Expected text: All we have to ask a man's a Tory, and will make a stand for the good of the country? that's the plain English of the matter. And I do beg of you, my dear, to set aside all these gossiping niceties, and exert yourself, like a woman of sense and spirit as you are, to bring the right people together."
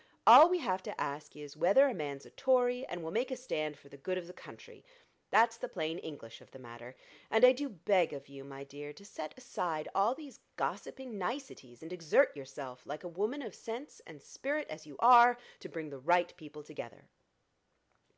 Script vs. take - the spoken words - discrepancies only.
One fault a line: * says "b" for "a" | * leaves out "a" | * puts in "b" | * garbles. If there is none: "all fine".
* puts in "is whether"